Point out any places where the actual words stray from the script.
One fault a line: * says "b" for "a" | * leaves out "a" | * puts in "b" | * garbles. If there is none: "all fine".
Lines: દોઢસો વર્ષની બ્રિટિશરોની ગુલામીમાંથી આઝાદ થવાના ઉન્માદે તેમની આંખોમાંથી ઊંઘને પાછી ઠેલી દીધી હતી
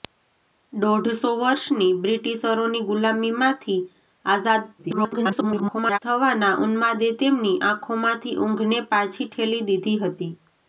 * garbles